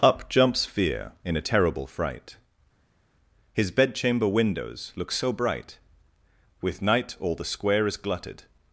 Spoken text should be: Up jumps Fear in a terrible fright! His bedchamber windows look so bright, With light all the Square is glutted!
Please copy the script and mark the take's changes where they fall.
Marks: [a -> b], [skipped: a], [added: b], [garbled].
Up jumps Fear in a terrible fright! His bedchamber windows look so bright, With [light -> night] all the Square is glutted!